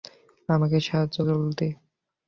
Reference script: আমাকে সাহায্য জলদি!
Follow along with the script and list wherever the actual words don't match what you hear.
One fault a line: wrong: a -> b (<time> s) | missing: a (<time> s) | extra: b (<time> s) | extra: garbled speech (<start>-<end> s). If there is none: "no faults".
no faults